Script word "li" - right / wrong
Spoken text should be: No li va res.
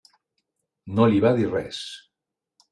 right